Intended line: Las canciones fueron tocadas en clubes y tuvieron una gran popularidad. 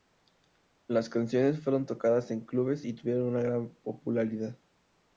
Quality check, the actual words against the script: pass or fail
pass